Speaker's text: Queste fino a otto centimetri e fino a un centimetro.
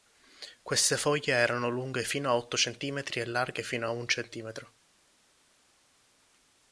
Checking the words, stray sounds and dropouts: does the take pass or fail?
fail